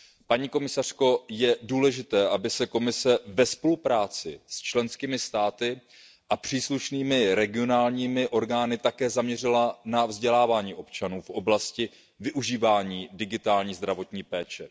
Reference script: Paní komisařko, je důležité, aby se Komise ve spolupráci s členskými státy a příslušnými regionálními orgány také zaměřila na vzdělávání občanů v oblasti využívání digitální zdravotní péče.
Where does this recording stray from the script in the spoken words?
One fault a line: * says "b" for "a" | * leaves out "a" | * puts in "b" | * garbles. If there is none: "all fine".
all fine